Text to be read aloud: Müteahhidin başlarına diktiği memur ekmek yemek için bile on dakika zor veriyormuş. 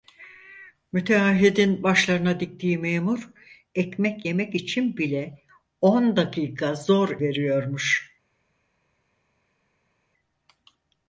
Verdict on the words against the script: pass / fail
pass